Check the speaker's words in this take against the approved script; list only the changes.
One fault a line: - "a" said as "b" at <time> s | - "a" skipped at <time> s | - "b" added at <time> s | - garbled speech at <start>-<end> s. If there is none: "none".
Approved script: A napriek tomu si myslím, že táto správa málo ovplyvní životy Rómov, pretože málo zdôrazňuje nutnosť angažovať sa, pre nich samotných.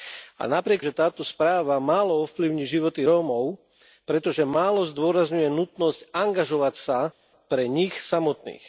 - "tomu si myslím" skipped at 0.8 s